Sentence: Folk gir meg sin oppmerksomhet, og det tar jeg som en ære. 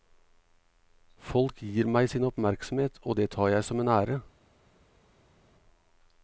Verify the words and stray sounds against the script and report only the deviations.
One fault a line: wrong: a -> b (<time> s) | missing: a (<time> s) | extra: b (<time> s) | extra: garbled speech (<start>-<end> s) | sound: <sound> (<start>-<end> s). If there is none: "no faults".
no faults